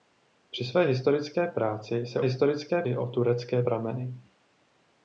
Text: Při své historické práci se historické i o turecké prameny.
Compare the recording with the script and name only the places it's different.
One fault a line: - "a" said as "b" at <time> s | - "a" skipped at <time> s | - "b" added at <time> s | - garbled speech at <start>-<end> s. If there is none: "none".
none